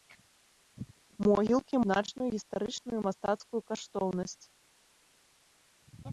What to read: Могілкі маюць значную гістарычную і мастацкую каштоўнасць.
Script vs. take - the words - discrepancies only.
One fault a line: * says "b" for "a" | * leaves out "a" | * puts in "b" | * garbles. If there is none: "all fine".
* leaves out "маюць"